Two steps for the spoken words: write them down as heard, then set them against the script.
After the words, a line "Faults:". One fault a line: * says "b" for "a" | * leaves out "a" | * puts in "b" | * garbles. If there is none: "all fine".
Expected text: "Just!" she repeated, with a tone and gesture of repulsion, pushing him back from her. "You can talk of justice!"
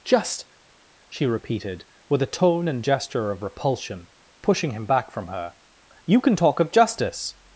"Just!" she repeated, with a tone and gesture of repulsion, pushing him back from her. "You can talk of justice!"
Faults:
all fine